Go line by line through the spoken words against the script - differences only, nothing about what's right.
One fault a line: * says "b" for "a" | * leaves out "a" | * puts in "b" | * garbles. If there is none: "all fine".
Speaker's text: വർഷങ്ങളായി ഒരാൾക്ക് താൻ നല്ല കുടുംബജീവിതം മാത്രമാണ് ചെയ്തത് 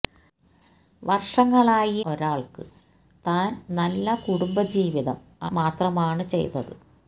all fine